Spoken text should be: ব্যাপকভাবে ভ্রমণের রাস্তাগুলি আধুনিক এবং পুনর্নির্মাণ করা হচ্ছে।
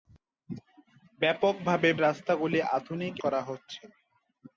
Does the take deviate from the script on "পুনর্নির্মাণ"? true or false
true